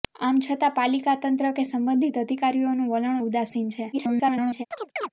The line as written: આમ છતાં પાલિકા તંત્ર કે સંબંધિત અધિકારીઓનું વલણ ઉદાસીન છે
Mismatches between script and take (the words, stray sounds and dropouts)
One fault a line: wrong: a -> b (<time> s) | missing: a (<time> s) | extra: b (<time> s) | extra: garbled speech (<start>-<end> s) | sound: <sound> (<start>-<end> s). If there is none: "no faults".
extra: garbled speech (3.9-4.7 s)
sound: chirp (4.7-5.1 s)